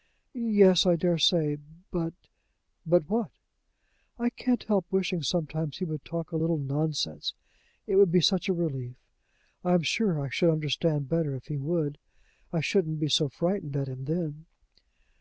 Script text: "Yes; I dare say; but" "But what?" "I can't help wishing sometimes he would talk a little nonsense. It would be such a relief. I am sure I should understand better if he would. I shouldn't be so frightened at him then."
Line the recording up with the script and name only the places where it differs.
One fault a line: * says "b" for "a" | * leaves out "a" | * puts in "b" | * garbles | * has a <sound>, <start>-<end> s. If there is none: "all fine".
all fine